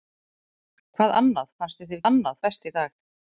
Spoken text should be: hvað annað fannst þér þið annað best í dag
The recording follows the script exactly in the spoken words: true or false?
true